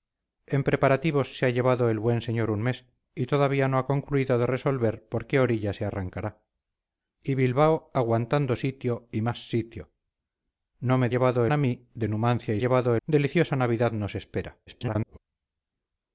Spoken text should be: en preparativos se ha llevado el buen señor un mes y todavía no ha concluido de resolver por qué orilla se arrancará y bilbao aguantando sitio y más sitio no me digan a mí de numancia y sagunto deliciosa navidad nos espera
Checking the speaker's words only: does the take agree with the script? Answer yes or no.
no